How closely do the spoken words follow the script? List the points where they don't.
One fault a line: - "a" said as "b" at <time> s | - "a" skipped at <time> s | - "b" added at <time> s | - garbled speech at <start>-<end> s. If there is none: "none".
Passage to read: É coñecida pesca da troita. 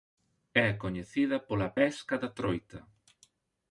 - "pola" added at 1.5 s